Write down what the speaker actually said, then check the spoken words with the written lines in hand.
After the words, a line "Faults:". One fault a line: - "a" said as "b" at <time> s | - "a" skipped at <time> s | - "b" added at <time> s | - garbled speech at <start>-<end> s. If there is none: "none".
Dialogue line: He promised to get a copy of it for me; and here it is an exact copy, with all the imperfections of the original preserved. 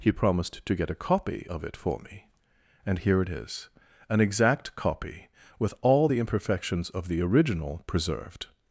He promised to get a copy of it for me; and here it is an exact copy, with all the imperfections of the original preserved.
Faults:
none